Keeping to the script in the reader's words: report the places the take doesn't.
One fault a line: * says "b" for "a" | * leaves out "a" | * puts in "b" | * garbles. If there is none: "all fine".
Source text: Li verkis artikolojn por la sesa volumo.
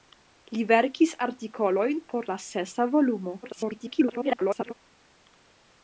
* garbles